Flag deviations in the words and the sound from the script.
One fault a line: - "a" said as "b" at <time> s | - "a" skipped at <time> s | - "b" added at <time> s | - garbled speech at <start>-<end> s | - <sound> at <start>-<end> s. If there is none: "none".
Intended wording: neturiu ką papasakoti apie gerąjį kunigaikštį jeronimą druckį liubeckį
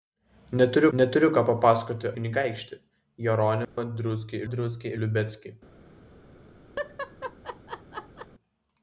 - "neturiu" added at 1.0 s
- "apie gerąjį" skipped at 2.1 s
- dropout at 3.6-3.8 s
- "druckį" added at 4.5 s
- laugh at 6.8-8.3 s